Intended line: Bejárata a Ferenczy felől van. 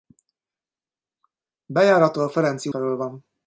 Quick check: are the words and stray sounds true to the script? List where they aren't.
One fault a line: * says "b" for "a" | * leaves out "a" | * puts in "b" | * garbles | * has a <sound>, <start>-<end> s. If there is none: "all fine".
all fine